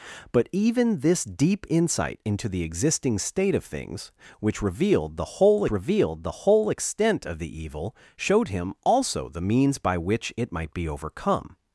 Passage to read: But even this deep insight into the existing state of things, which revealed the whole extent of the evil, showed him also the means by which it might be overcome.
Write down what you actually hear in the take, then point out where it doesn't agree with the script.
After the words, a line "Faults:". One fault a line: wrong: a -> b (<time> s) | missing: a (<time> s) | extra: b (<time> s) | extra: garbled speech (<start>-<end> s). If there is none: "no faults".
But even this deep insight into the existing state of things, which revealed the whole revealed the whole extent of the evil, showed him also the means by which it might be overcome.
Faults:
extra: revealed the whole (5.7 s)